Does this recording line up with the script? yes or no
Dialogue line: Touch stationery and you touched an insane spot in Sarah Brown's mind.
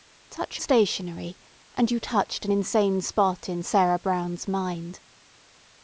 yes